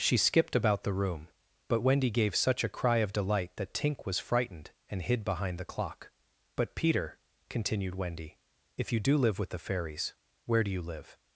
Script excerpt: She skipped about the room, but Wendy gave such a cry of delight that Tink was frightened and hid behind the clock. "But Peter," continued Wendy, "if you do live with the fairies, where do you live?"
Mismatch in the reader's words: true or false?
false